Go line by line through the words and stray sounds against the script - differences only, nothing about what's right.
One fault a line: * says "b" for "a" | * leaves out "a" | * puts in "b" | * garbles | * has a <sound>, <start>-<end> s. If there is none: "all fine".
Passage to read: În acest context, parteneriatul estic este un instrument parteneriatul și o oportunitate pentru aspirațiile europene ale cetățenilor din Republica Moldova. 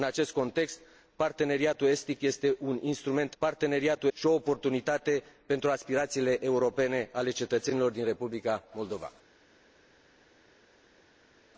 all fine